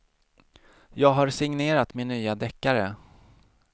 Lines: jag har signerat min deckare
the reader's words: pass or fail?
fail